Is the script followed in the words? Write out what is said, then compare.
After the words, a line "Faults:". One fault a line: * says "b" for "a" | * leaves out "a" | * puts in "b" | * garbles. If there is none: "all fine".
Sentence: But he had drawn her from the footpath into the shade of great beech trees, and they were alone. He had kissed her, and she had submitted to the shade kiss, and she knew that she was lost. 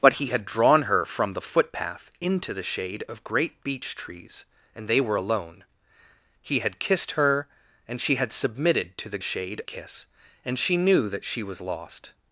But he had drawn her from the footpath into the shade of great beech trees, and they were alone. He had kissed her, and she had submitted to the shade kiss, and she knew that she was lost.
Faults:
all fine